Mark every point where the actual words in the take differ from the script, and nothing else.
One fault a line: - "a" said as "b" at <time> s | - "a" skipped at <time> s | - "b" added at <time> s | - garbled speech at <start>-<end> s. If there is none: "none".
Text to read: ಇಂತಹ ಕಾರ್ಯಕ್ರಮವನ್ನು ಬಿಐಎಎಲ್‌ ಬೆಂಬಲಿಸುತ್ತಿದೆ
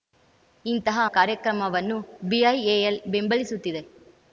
none